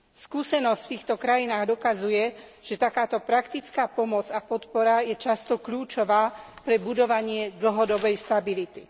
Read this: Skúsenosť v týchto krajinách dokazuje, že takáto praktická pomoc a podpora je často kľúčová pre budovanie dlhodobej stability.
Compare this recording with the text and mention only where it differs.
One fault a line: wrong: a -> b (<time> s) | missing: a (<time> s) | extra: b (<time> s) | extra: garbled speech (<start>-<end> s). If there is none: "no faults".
no faults